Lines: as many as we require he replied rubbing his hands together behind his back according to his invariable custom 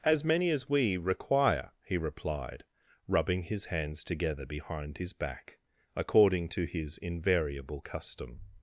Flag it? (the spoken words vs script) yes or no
no